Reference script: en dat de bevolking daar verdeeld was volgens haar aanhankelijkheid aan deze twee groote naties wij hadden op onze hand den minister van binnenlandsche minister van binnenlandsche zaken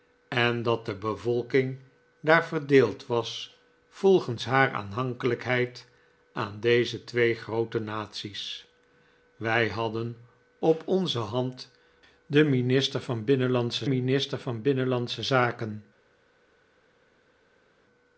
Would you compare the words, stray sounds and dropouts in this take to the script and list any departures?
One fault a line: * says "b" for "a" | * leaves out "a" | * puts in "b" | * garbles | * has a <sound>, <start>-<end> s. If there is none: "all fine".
all fine